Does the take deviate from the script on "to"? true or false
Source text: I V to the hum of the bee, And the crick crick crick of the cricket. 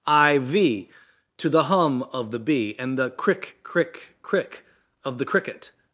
false